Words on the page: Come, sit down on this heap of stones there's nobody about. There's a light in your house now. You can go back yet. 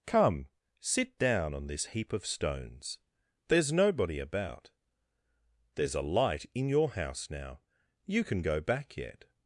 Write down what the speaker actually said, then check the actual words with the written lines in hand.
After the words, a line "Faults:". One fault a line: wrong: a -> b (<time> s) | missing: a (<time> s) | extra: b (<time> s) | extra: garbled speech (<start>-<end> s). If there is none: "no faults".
Come, sit down on this heap of stones there's nobody about. There's a light in your house now. You can go back yet.
Faults:
no faults